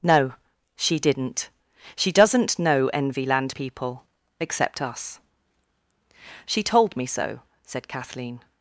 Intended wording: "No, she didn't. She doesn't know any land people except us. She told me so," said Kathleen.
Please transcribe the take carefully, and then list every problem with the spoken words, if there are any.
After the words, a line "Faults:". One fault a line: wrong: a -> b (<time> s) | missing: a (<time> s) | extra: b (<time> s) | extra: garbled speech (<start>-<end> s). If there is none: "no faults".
"No, she didn't. She doesn't know envy land people except us. She told me so," said Kathleen.
Faults:
wrong: any -> envy (2.9 s)